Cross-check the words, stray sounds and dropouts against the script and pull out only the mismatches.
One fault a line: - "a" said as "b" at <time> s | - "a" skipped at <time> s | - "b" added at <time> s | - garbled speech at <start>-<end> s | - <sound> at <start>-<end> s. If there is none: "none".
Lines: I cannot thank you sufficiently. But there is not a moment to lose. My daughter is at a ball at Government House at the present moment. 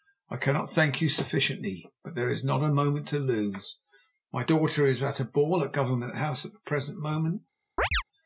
- chirp at 7.8-8.0 s